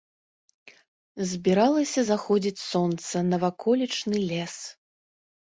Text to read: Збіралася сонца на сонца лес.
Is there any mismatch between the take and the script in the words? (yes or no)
yes